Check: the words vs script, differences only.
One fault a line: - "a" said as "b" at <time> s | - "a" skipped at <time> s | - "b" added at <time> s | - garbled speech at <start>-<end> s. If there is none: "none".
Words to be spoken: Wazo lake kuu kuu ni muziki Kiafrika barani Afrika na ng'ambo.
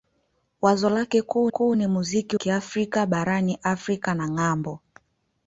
none